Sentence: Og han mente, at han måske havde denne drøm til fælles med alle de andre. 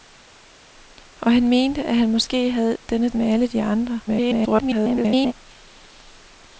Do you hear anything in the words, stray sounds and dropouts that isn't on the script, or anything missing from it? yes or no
yes